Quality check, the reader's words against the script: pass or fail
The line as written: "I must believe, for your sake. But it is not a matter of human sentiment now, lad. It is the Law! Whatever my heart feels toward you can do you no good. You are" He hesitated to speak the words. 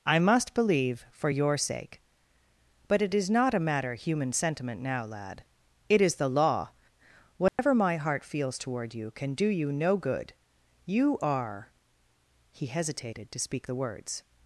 fail